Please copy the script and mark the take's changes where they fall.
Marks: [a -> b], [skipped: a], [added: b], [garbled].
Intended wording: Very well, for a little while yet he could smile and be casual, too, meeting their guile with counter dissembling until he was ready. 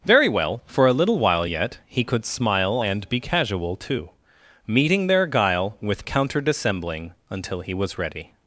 Very well, for a little while yet he could smile and be casual, too, meeting their guile with counter dissembling until he was ready.